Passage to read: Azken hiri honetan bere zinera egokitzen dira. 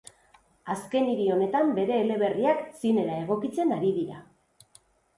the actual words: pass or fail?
fail